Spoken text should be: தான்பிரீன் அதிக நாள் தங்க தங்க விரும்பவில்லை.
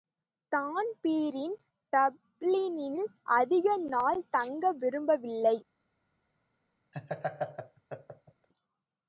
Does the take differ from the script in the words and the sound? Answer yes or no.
yes